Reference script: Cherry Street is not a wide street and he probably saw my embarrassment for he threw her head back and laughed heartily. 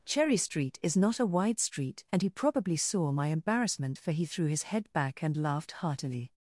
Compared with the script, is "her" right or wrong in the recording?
wrong